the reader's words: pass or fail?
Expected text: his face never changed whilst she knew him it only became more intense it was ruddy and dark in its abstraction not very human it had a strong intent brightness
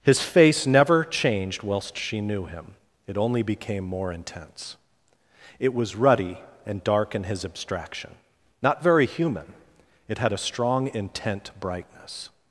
fail